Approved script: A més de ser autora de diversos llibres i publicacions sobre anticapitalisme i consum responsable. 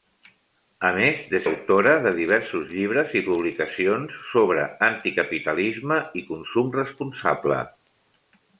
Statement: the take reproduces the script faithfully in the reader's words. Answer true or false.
false